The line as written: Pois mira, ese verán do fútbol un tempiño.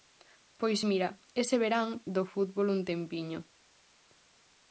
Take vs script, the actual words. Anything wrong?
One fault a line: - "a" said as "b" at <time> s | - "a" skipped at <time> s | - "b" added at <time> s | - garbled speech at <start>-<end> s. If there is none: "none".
none